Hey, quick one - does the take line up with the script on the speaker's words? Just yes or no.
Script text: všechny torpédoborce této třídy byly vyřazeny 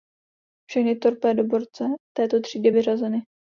no